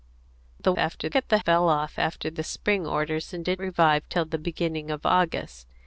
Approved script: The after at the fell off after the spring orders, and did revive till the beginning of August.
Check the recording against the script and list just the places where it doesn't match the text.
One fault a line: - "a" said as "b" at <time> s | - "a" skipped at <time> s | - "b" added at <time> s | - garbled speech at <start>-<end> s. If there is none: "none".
none